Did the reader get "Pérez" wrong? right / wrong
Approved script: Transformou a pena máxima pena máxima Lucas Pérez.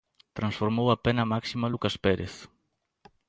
right